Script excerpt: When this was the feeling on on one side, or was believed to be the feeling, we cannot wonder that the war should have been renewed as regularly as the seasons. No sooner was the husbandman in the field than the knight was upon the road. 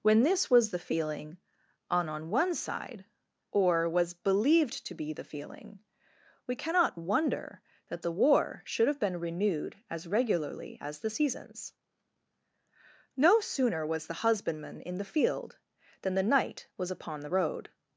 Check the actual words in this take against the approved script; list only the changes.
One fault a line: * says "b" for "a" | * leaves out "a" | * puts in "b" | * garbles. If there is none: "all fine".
all fine